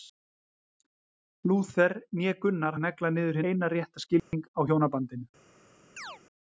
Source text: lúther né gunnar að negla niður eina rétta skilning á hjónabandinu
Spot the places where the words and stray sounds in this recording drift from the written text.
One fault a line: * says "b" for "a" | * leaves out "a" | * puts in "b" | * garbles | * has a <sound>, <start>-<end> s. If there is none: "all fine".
* has a dropout, 4.2-4.3 s
* has a chirp, 6.0-6.2 s